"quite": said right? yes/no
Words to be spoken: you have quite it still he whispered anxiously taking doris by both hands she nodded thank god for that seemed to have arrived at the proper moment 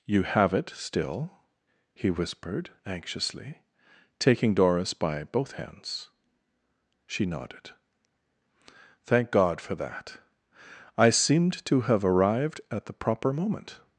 no